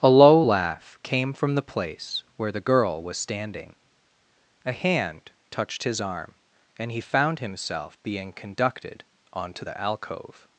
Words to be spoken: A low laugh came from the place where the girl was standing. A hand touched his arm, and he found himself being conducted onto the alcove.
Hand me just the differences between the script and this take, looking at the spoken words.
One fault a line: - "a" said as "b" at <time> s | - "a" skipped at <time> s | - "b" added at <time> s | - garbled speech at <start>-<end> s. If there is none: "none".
none